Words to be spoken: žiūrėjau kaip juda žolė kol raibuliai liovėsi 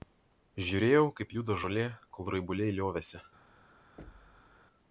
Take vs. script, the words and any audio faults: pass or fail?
fail